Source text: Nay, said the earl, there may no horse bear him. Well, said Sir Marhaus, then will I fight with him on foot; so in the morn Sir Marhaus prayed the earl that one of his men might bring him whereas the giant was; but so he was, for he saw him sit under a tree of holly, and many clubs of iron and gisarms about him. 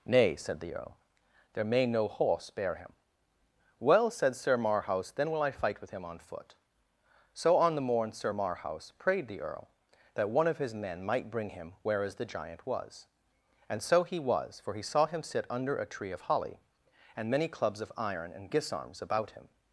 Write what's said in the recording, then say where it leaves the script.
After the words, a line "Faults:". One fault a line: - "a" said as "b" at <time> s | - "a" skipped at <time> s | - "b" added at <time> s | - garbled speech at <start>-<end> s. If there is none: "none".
Nay, said the earl, there may no horse bear him. Well, said Sir Marhaus, then will I fight with him on foot; so on the morn Sir Marhaus prayed the earl that one of his men might bring him whereas the giant was; and so he was, for he saw him sit under a tree of holly, and many clubs of iron and gisarms about him.
Faults:
- "in" said as "on" at 7.6 s
- "but" said as "and" at 13.7 s